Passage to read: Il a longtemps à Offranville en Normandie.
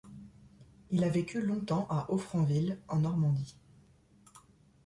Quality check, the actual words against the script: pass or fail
fail